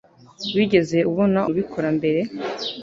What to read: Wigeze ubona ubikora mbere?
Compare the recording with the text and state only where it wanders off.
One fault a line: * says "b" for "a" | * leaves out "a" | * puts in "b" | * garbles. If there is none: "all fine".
all fine